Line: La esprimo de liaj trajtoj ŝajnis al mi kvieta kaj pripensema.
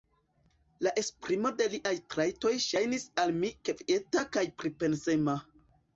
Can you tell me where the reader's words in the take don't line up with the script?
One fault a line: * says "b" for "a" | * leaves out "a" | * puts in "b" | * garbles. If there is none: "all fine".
all fine